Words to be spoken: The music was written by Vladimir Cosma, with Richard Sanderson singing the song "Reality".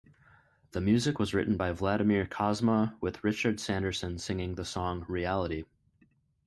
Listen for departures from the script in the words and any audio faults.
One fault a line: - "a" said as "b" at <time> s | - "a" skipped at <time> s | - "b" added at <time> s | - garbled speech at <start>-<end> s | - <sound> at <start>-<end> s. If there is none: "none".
none